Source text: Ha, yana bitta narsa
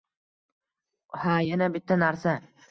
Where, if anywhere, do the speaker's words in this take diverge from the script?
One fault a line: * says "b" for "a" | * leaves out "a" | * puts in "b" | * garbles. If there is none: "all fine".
all fine